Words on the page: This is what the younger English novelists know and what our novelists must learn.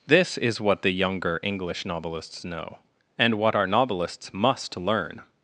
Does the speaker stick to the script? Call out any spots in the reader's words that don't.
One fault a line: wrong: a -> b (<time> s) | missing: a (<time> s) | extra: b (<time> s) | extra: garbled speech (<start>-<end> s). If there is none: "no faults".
no faults